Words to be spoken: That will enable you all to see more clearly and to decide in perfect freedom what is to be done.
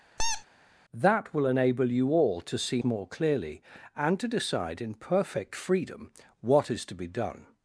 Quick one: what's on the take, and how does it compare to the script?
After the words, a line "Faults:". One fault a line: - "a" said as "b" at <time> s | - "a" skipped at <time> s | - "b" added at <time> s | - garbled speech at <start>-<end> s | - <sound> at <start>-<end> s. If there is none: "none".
That will enable you all to see more clearly and to decide in perfect freedom what is to be done.
Faults:
- squeak at 0.2-0.5 s